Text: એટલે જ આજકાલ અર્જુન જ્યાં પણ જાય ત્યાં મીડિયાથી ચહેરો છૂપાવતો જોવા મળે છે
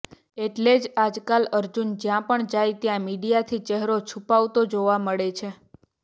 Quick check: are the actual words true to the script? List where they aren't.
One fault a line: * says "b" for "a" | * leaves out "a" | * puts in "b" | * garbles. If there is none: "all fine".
all fine